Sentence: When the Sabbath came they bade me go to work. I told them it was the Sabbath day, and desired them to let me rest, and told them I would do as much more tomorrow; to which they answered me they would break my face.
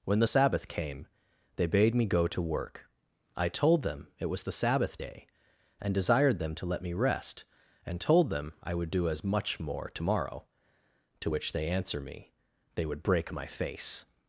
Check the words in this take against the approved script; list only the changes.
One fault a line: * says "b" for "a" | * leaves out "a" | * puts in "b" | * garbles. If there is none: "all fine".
* says "answer" for "answered"